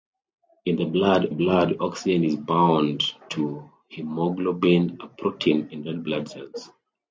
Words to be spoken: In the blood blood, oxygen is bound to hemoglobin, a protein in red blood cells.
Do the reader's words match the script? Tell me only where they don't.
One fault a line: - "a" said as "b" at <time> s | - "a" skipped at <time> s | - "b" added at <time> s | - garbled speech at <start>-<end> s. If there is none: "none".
none